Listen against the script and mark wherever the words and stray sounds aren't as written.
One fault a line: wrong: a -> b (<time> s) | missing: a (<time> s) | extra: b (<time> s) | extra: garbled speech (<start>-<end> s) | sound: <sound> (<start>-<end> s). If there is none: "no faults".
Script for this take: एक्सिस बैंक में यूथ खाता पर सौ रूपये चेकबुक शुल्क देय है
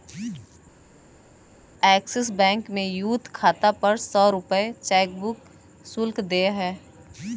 no faults